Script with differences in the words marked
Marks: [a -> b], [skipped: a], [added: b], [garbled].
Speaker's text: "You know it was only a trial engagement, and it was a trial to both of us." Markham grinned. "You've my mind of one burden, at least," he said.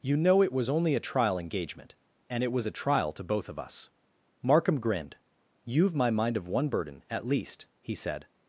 "You know it was only a trial engagement, and it was a trial to both of us." Markham grinned. "You've my mind of one burden, at least," he said.